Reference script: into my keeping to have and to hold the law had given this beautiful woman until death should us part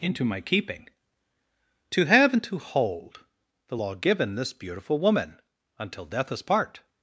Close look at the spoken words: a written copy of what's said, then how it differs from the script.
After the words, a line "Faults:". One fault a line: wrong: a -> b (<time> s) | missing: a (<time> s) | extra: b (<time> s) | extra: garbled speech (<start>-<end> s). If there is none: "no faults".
into my keeping to have and to hold the law given this beautiful woman until death us part
Faults:
missing: had (3.9 s)
missing: should (6.3 s)